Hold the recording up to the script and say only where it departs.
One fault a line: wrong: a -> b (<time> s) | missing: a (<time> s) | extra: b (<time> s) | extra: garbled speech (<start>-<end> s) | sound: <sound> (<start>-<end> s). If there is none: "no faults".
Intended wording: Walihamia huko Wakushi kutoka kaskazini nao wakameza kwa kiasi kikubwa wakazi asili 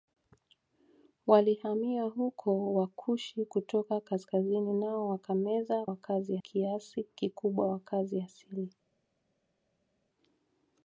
wrong: kwa -> wakazi (5.9 s)